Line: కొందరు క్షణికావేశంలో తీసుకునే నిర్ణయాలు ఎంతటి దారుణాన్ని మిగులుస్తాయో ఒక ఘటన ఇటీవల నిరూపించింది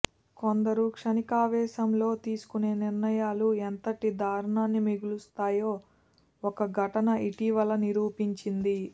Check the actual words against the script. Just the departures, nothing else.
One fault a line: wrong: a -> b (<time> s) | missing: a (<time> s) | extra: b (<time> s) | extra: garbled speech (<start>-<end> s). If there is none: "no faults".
no faults